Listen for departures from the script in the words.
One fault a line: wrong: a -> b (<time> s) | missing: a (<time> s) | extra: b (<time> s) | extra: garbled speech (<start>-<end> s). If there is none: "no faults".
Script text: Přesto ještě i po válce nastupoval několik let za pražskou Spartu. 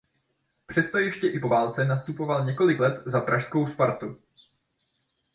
no faults